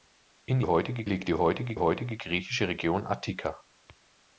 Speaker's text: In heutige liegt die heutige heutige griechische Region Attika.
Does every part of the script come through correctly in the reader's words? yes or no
yes